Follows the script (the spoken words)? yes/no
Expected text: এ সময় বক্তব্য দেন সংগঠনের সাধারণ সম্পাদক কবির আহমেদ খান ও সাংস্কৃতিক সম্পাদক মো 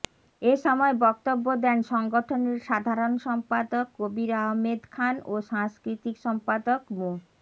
yes